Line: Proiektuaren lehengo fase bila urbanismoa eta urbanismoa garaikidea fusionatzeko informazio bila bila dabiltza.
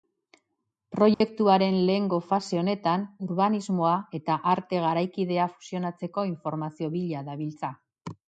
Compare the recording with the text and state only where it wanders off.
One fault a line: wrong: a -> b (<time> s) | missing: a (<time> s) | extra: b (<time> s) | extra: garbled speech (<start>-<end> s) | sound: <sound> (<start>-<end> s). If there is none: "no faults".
sound: dropout (1.1-1.2 s)
wrong: bila -> honetan (2.6 s)
wrong: urbanismoa -> arte (4.5 s)
missing: bila (7.2 s)